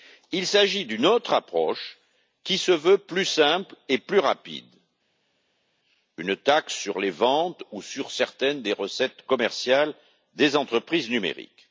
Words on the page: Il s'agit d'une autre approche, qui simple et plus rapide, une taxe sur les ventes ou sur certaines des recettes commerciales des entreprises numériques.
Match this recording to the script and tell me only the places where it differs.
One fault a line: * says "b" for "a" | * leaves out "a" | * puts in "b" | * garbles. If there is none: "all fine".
* puts in "se veut plus"